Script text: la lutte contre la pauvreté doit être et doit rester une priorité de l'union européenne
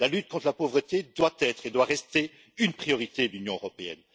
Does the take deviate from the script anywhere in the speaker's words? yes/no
no